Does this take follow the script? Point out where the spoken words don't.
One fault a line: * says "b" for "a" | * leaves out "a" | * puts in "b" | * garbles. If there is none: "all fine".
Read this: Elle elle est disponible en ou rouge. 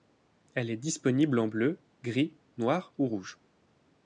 * leaves out "elle"
* puts in "bleu gris noir"